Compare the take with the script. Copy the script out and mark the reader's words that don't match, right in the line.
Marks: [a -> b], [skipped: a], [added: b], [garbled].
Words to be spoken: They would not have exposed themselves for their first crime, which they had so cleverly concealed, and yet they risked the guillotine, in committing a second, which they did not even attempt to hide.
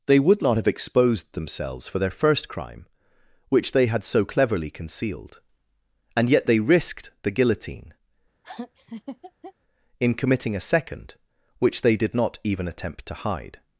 They would not have exposed themselves for their first crime, which they had so cleverly concealed, and yet they risked the guillotine, in committing a second, which they did not even attempt to hide.